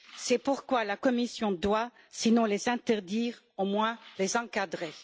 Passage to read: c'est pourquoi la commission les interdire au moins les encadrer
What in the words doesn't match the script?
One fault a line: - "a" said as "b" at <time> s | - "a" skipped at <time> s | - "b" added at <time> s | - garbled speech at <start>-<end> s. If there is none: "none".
- "doit sinon" added at 1.5 s